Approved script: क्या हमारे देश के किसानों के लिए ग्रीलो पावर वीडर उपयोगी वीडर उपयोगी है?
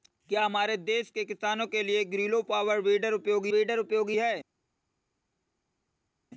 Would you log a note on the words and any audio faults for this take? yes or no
no